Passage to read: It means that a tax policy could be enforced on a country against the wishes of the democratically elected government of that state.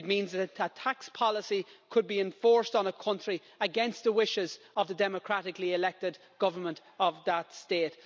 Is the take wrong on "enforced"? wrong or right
right